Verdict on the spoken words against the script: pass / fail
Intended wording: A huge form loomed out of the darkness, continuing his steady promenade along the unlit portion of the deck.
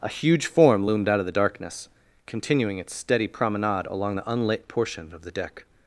fail